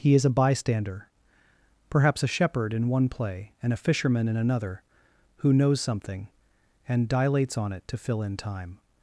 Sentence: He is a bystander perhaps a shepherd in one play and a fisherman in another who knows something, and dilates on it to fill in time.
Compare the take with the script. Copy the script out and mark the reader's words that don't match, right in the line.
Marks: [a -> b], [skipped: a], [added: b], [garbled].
He is a bystander perhaps a shepherd in one play and a fisherman in another who knows something, and dilates on it to fill in time.